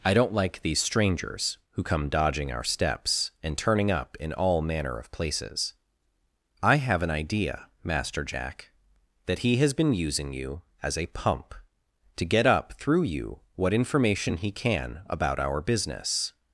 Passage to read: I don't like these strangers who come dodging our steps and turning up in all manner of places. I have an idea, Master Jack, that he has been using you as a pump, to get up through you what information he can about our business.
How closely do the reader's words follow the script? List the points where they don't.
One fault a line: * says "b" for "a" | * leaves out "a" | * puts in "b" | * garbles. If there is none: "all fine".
all fine